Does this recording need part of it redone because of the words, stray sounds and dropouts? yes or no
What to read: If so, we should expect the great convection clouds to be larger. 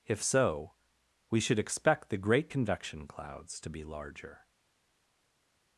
no